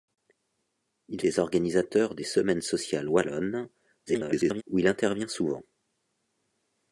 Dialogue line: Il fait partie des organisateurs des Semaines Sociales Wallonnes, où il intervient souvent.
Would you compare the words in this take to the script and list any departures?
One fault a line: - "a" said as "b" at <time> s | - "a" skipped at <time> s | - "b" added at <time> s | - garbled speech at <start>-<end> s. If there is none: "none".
- "fait partie" skipped at 1.2 s
- garbled speech at 4.1-4.6 s